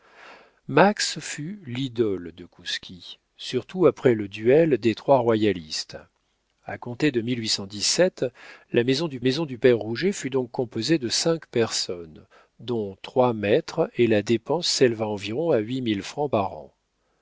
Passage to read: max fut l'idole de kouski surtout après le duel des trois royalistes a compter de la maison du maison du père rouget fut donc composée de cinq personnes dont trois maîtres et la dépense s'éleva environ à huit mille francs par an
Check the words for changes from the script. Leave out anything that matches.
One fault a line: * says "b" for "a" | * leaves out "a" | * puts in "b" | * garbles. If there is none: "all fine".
all fine